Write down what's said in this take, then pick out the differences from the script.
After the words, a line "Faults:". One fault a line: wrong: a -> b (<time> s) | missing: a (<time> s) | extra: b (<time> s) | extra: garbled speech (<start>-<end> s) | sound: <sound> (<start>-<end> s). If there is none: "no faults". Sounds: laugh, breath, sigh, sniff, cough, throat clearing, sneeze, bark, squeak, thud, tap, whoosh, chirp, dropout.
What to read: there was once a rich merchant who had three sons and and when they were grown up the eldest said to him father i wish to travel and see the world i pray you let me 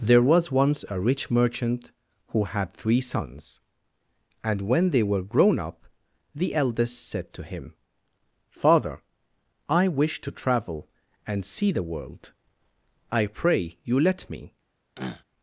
there was once a rich merchant who had three sons and when they were grown up the eldest said to him father i wish to travel and see the world i pray you let me
Faults:
missing: and (4.6 s)
sound: throat clearing (15.0-15.2 s)